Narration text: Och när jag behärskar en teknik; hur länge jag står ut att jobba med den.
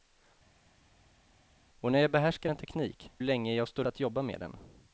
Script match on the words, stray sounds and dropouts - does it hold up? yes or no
no